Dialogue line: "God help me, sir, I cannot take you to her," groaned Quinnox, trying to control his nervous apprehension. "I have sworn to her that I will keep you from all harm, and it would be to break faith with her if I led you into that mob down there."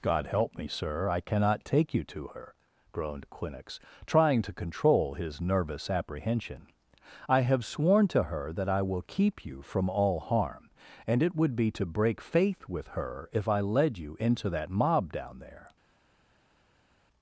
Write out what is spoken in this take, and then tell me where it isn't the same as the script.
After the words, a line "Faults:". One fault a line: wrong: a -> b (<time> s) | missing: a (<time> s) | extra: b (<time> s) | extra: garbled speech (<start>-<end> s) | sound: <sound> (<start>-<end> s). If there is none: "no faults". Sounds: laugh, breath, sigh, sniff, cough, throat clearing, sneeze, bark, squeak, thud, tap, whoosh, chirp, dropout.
"God help me, sir, I cannot take you to her," groaned Quinnox, trying to control his nervous apprehension. "I have sworn to her that I will keep you from all harm, and it would be to break faith with her if I led you into that mob down there."
Faults:
no faults